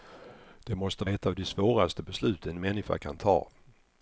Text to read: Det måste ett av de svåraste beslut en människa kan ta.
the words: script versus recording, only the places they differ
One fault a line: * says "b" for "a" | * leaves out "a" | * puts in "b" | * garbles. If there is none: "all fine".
all fine